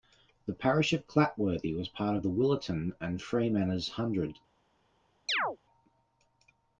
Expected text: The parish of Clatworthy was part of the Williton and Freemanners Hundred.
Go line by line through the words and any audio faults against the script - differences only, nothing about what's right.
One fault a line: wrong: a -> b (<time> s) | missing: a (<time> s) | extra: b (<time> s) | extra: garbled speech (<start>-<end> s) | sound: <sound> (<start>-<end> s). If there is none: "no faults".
sound: chirp (5.3-5.6 s)